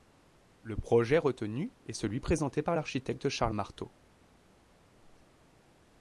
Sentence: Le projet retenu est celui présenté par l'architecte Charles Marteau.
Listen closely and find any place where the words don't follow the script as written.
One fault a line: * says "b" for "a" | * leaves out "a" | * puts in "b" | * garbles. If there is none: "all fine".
all fine